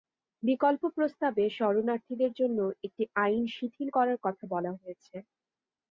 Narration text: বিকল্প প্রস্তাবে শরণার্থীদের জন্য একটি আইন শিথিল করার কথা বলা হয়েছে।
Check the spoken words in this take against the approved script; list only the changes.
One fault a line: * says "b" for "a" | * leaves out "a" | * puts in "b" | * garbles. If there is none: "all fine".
all fine